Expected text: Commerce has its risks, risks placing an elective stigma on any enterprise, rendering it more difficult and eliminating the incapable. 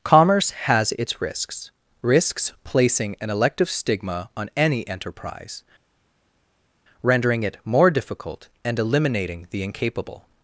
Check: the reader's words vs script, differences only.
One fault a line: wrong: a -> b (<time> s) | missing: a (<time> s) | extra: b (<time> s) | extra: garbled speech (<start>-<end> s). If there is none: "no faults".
no faults